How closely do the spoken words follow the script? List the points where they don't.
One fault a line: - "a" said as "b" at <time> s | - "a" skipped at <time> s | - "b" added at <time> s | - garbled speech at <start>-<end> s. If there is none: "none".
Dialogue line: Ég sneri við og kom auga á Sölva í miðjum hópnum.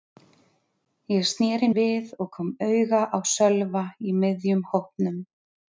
none